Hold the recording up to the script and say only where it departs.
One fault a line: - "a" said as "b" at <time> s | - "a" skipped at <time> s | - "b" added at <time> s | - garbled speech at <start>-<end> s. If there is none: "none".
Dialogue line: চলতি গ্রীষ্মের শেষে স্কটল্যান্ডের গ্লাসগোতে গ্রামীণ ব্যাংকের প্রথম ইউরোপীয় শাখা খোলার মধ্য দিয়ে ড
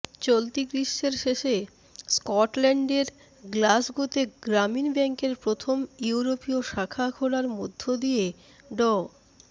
none